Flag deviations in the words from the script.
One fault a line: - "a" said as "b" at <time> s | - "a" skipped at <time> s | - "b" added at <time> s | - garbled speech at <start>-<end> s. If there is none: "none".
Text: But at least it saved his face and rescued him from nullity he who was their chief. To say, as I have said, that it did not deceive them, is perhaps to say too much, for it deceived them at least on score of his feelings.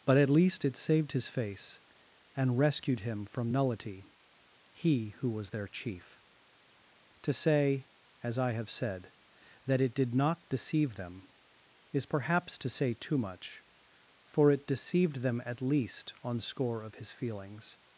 none